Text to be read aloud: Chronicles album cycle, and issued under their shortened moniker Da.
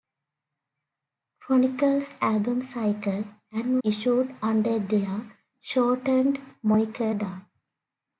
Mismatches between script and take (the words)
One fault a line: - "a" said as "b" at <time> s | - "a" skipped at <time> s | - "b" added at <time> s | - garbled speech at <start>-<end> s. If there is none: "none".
none